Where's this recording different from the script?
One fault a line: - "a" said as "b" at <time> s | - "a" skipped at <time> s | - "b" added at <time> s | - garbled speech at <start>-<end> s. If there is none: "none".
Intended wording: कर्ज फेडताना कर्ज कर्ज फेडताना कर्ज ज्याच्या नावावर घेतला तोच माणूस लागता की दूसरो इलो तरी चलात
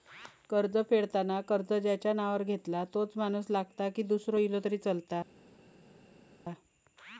- "कर्ज फेडताना कर्ज" skipped at 1.7 s